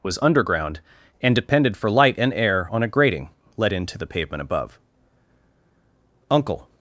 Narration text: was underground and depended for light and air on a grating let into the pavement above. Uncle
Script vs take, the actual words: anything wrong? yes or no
no